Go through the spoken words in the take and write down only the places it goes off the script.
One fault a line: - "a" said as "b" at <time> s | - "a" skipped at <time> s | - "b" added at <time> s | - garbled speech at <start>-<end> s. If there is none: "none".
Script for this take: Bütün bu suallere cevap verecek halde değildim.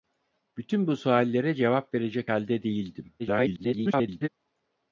- garbled speech at 3.2-4.3 s